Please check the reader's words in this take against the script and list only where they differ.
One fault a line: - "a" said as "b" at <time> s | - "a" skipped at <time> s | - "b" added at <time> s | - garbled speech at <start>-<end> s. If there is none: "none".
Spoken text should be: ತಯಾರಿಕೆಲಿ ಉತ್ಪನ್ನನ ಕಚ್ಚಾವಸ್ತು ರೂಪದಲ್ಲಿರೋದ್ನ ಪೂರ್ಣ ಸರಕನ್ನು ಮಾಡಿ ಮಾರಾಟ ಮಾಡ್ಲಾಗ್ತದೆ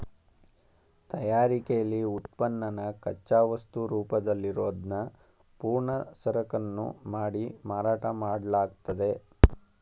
none